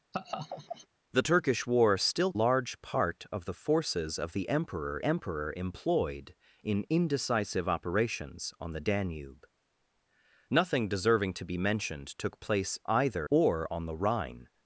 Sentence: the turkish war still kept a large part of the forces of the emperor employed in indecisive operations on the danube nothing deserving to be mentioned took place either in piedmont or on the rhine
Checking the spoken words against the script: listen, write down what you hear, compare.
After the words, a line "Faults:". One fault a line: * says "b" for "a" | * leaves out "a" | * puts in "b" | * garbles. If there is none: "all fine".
the turkish war still large part of the forces of the emperor emperor employed in indecisive operations on the danube nothing deserving to be mentioned took place either or on the rhine
Faults:
* leaves out "kept a"
* puts in "emperor"
* leaves out "in piedmont"